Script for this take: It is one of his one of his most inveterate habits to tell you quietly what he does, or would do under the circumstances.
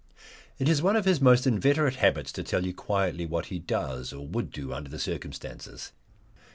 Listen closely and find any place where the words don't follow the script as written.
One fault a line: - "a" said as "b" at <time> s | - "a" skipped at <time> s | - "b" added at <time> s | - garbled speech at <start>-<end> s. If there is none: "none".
- "one of his" skipped at 1.2 s